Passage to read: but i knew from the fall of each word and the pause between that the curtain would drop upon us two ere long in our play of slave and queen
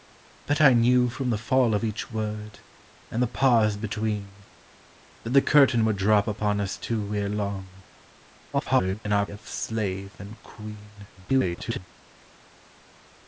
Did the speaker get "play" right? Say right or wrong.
wrong